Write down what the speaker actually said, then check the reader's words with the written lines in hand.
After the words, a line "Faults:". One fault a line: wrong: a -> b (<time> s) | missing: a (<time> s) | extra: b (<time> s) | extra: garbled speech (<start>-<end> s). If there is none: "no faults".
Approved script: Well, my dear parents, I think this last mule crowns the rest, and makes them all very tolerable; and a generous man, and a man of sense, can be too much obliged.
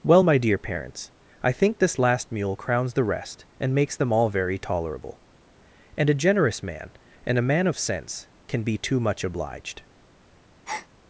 Well, my dear parents, I think this last mule crowns the rest, and makes them all very tolerable; and a generous man, and a man of sense, can be too much obliged.
Faults:
no faults